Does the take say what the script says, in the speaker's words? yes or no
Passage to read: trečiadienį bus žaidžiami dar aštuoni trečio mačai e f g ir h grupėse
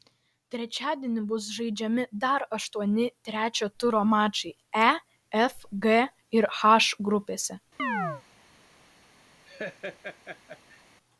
no